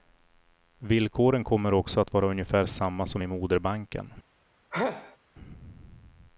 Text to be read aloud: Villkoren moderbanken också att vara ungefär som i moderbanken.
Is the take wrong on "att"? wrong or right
right